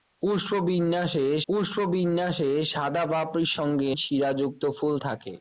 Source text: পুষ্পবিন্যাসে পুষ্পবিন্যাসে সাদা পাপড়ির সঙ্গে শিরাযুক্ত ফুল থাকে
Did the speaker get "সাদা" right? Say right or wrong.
right